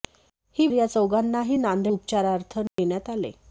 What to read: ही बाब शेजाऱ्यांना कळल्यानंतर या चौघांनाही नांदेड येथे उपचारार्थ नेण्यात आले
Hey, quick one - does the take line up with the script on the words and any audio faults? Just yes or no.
no